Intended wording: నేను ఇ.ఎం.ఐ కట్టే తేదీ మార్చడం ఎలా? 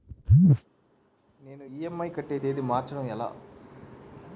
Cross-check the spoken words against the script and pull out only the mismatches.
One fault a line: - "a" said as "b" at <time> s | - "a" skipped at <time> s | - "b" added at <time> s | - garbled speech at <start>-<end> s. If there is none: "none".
none